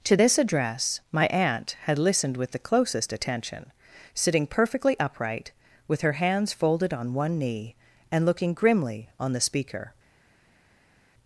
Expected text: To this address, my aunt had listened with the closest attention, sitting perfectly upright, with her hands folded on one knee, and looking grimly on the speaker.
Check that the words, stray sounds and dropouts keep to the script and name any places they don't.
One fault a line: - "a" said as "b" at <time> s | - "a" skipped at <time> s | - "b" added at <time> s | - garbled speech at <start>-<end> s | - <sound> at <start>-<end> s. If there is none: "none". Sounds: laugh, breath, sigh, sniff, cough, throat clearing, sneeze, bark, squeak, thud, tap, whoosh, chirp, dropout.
none